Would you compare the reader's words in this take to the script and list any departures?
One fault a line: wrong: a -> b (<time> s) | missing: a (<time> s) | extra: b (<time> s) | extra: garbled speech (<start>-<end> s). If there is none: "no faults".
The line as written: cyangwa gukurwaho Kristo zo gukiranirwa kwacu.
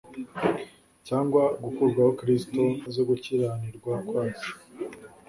no faults